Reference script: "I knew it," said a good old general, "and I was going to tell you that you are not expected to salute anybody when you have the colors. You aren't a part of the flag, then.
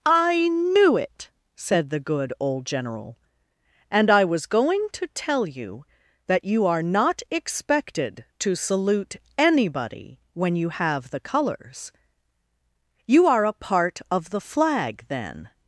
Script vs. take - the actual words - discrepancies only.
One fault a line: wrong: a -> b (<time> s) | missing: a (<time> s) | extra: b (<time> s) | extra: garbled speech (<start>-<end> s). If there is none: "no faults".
wrong: a -> the (1.9 s)
wrong: aren't -> are (13.3 s)